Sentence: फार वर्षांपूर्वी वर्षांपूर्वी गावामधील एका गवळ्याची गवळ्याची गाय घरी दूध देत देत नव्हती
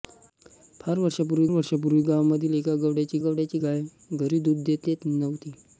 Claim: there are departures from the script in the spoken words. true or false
false